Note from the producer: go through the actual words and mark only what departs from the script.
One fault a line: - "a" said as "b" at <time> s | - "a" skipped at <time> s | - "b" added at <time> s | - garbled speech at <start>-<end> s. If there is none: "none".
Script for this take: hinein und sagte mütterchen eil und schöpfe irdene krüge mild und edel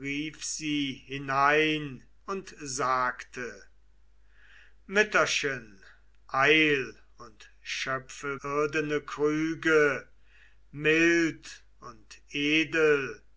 none